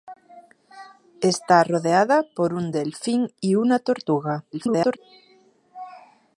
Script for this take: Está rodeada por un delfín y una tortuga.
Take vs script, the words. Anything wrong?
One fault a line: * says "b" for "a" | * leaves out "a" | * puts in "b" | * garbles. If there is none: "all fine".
* garbles